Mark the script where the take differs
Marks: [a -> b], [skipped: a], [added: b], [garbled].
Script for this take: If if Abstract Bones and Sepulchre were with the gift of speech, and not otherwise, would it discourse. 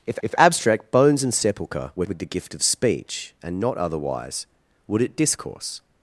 If if Abstract Bones and Sepulchre were with the gift of speech, and not otherwise, would it discourse.